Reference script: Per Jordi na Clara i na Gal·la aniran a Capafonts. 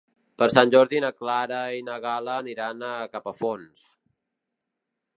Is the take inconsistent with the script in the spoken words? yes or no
yes